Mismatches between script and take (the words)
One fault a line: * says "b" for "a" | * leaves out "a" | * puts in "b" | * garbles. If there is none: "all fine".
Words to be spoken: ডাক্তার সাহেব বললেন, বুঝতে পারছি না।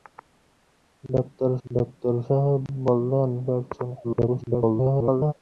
* puts in "ডাক্তার"
* leaves out "বুঝতে"
* garbles